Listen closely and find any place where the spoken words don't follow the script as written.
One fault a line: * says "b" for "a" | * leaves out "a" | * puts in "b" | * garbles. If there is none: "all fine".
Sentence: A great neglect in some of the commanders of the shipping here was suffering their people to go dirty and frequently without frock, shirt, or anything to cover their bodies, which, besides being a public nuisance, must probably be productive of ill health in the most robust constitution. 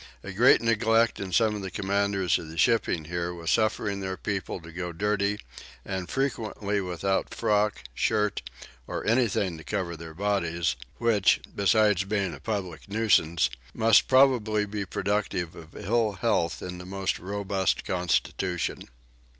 all fine